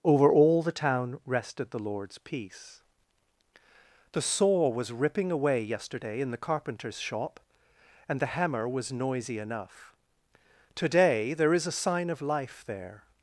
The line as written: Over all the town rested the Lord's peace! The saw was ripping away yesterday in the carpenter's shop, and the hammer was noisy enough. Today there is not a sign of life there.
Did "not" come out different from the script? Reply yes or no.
yes